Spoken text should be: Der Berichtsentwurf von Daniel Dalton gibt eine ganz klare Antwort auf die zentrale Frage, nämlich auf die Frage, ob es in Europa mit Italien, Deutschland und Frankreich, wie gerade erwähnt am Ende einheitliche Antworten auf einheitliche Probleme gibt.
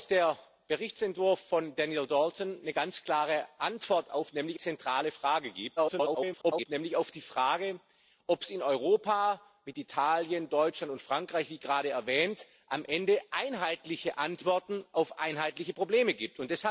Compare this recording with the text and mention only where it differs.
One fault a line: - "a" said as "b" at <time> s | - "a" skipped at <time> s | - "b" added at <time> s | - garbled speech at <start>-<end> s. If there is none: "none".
- "die" said as "nämlich" at 4.3 s
- garbled speech at 5.8-6.7 s